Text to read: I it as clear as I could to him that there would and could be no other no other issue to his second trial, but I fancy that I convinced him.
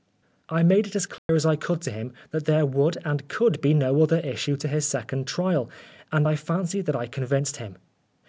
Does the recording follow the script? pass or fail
fail